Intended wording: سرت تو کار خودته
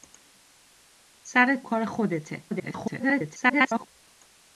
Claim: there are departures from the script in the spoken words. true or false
true